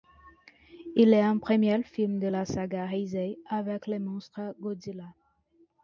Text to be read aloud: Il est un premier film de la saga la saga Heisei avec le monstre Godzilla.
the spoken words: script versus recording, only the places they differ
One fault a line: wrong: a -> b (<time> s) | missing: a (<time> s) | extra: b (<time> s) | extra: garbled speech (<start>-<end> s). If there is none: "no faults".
missing: la saga (2.9 s)